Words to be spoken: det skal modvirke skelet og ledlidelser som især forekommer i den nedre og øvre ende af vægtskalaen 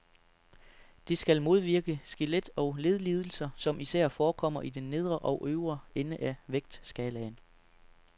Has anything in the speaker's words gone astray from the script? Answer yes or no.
no